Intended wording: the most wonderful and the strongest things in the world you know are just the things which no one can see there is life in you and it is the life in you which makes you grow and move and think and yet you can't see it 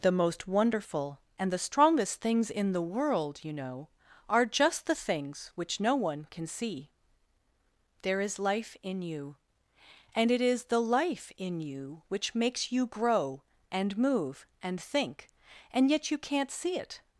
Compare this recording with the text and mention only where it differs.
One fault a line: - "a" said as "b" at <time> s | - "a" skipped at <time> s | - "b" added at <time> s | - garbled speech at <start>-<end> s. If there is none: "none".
none